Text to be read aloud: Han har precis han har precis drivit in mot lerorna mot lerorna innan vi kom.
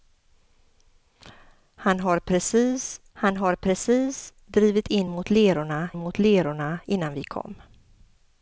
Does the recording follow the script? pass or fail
pass